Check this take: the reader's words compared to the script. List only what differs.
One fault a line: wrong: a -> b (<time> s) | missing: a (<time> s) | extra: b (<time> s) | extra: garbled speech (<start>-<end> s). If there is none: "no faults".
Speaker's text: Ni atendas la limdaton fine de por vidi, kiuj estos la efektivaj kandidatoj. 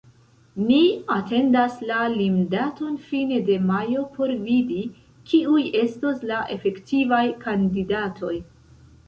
extra: majo (3.7 s)